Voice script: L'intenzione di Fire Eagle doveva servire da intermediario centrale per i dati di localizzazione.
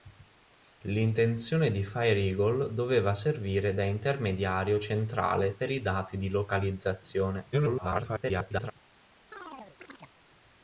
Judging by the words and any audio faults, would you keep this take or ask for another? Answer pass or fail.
fail